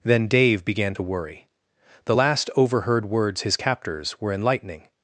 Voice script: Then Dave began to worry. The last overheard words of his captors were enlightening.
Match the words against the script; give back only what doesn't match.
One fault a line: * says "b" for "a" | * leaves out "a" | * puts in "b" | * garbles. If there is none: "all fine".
* leaves out "of"